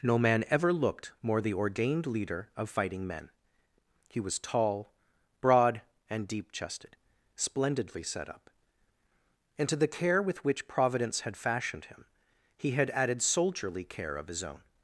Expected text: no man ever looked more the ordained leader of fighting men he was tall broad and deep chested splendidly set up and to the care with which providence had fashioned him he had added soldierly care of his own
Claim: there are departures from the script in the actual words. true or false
false